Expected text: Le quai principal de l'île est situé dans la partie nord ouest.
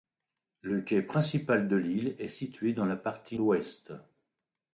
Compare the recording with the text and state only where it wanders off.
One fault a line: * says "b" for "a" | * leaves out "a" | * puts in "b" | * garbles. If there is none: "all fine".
* leaves out "nord"